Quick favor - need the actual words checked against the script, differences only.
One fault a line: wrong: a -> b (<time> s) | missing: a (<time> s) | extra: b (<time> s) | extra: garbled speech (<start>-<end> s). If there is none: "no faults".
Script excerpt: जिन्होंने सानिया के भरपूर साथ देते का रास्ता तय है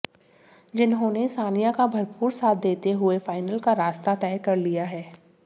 wrong: के -> का (1.7 s)
extra: हुए फाइनल (2.9 s)
extra: कर लिया (4.4 s)